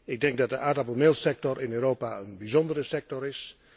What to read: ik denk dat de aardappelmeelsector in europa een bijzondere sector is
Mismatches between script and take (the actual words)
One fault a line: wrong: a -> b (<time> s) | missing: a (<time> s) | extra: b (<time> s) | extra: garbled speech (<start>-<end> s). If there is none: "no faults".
no faults